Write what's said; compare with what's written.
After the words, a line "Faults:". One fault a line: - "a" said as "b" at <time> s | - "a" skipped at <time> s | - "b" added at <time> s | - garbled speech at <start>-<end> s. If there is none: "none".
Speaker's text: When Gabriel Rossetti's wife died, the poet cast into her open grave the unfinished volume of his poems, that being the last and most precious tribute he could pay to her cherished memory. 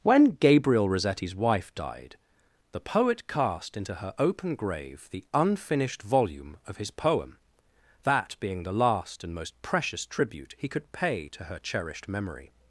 When Gabriel Rossetti's wife died, the poet cast into her open grave the unfinished volume of his poem, that being the last and most precious tribute he could pay to her cherished memory.
Faults:
- "poems" said as "poem" at 6.9 s